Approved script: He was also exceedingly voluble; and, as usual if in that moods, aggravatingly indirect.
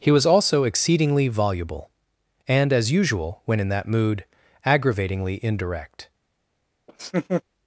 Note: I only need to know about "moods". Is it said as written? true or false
false